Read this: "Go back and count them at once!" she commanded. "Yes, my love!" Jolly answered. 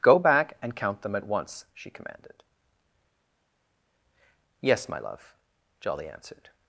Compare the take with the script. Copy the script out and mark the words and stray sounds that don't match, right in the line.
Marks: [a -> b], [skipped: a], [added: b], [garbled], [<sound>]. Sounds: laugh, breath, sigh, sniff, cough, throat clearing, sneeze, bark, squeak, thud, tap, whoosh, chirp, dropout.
"Go back and count them at once!" she commanded. "Yes, my love!" Jolly answered.